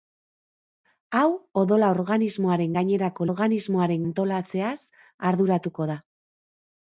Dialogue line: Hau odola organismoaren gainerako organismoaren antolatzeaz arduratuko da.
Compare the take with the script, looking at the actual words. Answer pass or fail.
pass